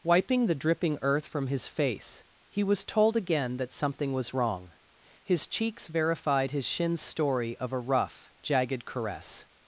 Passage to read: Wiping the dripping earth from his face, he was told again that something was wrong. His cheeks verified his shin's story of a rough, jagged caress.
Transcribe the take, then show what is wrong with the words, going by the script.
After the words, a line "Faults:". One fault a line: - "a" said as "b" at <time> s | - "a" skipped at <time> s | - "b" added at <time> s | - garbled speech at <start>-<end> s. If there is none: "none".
Wiping the dripping earth from his face, he was told again that something was wrong. His cheeks verified his shin's story of a rough, jagged caress.
Faults:
none